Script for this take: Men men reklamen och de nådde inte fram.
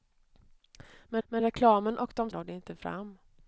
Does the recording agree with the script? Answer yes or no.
yes